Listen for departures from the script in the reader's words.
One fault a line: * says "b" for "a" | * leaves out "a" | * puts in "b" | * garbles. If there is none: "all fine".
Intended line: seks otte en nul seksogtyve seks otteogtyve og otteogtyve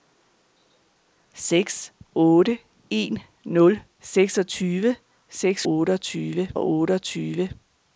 all fine